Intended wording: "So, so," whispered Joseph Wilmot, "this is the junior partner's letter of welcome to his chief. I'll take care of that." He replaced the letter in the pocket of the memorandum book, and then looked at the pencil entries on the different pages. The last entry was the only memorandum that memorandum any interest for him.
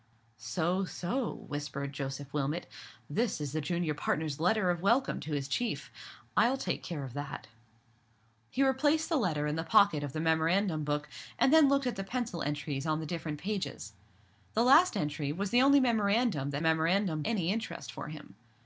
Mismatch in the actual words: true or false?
false